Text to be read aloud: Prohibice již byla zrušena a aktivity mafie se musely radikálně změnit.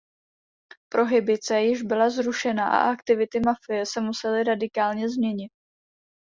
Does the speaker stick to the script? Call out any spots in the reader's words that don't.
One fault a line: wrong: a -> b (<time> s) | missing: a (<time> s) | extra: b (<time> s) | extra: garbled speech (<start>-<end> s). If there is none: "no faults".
no faults